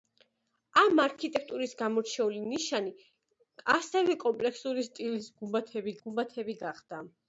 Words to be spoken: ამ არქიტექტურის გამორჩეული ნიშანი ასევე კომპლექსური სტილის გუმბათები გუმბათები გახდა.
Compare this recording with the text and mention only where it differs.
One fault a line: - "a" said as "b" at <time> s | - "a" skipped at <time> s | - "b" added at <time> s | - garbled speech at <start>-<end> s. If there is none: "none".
none